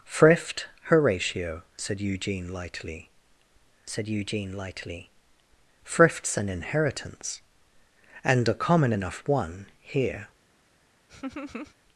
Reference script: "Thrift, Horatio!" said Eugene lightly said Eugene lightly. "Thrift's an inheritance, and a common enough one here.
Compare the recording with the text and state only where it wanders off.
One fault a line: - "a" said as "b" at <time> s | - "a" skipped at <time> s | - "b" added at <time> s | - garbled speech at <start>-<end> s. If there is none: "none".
none